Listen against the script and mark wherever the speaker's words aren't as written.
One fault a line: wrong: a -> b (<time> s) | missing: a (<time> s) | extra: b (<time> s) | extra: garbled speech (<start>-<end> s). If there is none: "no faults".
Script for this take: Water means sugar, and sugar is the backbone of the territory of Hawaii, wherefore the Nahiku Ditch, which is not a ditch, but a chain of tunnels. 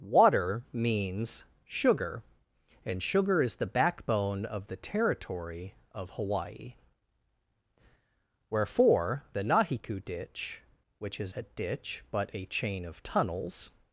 missing: not (11.3 s)